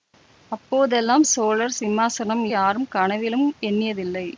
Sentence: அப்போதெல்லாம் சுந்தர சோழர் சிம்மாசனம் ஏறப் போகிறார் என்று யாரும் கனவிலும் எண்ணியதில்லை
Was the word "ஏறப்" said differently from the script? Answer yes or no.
yes